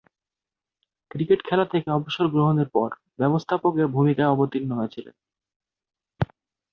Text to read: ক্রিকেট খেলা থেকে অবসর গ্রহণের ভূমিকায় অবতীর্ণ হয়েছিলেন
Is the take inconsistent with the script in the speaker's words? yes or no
yes